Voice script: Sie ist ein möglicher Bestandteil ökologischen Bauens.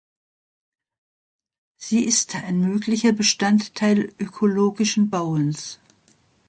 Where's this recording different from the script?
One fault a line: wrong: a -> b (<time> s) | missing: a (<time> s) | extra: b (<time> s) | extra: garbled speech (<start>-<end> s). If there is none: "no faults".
no faults